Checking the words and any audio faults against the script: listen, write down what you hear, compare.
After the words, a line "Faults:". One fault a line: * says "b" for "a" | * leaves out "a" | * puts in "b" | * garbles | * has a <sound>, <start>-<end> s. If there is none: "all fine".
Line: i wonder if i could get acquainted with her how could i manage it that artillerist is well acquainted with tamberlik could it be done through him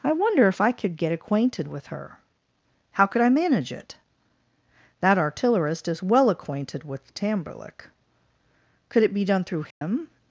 i wonder if i could get acquainted with her how could i manage it that artillerist is well acquainted with tamberlik could it be done through him
Faults:
* has a dropout, 9.7-9.8 s